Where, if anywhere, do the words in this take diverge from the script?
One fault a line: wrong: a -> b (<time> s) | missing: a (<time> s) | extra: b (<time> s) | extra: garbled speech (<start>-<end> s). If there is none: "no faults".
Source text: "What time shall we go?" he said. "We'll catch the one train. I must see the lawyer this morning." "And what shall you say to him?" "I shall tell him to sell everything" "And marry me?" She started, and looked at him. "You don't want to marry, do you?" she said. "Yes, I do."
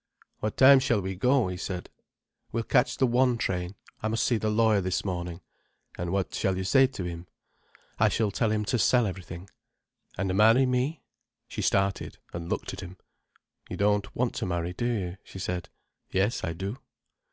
no faults